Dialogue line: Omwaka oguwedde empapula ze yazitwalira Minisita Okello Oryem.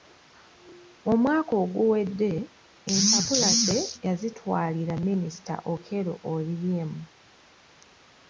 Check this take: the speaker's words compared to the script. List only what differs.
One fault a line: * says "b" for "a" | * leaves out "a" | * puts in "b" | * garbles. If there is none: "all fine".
all fine